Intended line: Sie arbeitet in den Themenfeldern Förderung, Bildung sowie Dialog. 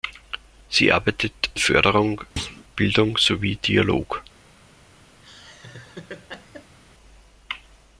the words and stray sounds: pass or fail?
fail